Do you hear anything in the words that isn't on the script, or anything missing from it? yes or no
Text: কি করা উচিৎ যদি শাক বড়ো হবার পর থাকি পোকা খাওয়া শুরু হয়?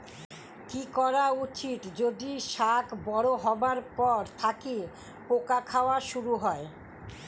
no